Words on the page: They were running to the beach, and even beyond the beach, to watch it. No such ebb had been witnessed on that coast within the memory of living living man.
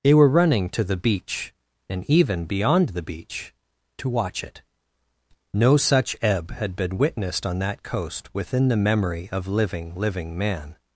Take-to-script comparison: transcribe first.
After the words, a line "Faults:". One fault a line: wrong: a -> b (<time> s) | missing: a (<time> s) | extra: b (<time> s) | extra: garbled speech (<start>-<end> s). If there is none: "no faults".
They were running to the beach, and even beyond the beach, to watch it. No such ebb had been witnessed on that coast within the memory of living living man.
Faults:
no faults